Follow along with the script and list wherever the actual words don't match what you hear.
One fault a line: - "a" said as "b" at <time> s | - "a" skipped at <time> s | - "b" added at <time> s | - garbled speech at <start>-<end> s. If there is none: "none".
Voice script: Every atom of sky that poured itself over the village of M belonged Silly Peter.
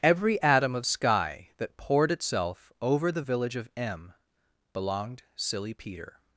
none